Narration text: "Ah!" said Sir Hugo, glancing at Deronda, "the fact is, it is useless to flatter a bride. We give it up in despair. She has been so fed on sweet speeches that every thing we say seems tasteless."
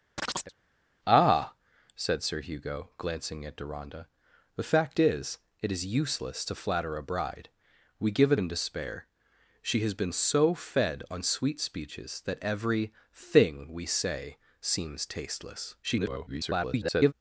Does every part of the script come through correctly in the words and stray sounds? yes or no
no